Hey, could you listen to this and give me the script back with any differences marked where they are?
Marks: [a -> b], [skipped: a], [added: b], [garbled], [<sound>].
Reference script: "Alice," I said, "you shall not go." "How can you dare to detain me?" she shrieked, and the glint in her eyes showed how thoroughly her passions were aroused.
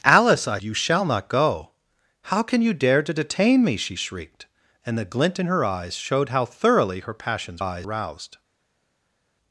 "Alice," I [skipped: said,] "you shall not go." "How can you dare to detain me?" she shrieked, and the glint in her eyes showed how thoroughly her passions [were -> eyes] aroused.